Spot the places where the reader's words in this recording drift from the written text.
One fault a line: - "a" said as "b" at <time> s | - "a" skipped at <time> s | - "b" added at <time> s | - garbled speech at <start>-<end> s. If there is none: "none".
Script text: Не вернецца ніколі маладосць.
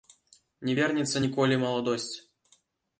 none